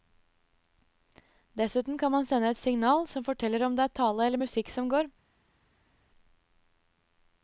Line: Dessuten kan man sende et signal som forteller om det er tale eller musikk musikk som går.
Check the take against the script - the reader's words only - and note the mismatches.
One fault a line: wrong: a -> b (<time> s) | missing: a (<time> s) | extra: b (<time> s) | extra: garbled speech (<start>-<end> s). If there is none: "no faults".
missing: musikk (4.7 s)